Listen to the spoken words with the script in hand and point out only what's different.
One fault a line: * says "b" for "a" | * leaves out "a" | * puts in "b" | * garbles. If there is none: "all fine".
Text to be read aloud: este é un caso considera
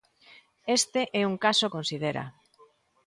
all fine